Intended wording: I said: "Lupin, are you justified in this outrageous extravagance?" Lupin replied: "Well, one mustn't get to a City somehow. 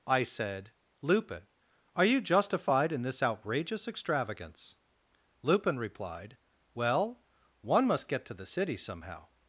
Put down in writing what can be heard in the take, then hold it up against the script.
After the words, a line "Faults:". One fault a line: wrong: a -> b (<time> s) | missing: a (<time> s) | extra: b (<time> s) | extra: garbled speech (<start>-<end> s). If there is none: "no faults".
I said: "Lupin, are you justified in this outrageous extravagance?" Lupin replied: "Well, one must get to the City somehow.
Faults:
wrong: mustn't -> must (7.9 s)
wrong: a -> the (8.3 s)